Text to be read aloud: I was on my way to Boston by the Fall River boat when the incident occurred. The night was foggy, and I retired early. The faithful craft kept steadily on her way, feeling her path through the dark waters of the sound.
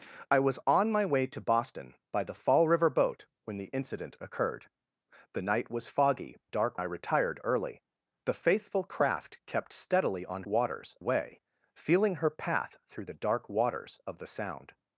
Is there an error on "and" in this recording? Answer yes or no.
yes